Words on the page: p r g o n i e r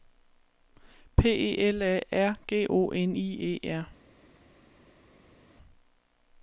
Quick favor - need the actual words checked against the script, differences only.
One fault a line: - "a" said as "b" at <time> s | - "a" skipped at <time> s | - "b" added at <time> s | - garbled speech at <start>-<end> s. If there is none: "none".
- "e l a" added at 1.3 s